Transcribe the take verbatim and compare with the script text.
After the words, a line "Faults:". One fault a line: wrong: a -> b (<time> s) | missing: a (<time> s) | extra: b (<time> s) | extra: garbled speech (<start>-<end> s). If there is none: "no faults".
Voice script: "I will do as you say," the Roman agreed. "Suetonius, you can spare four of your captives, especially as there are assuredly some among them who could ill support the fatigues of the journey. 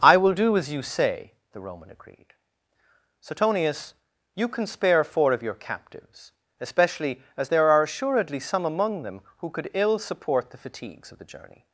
"I will do as you say," the Roman agreed. "Suetonius, you can spare four of your captives, especially as there are assuredly some among them who could ill support the fatigues of the journey.
Faults:
no faults